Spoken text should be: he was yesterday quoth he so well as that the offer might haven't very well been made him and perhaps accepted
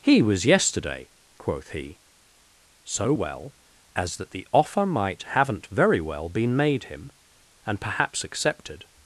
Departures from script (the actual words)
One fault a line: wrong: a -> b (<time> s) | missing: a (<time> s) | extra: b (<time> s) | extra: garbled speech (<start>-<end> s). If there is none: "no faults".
no faults